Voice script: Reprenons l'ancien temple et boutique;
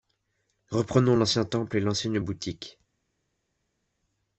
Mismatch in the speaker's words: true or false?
true